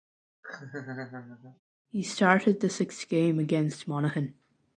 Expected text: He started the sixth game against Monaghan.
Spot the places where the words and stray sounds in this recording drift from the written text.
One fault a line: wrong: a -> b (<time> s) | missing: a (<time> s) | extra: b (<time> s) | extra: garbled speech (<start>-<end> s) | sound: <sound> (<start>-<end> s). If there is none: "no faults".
sound: laugh (0.4-1.6 s)